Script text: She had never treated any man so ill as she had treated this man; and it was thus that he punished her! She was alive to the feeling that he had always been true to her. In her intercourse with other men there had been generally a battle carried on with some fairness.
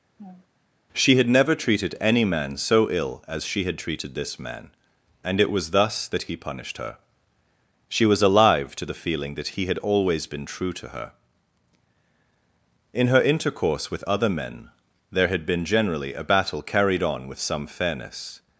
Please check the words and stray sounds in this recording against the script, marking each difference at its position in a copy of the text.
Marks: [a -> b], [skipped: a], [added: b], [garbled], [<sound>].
[laugh] She had never treated any man so ill as she had treated this man; and it was thus that he punished her! She was alive to the feeling that he had always been true to her. In her intercourse with other men there had been generally a battle carried on with some fairness.